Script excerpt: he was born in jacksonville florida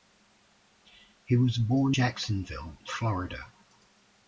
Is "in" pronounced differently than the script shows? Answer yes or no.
yes